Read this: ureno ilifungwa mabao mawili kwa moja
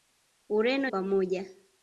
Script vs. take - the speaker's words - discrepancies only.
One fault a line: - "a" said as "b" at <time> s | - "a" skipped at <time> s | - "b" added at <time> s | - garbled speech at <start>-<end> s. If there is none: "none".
- "ilifungwa mabao mawili" skipped at 0.9 s